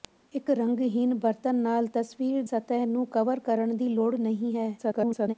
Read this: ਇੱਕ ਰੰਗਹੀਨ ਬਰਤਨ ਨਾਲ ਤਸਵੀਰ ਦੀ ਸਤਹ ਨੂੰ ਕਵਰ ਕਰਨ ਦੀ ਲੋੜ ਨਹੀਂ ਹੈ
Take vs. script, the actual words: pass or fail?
fail